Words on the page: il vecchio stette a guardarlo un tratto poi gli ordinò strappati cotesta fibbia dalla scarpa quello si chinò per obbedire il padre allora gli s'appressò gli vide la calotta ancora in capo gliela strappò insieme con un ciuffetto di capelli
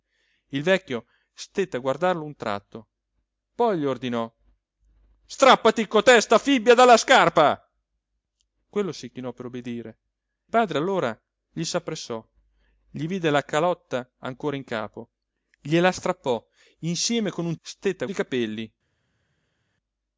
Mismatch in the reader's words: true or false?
true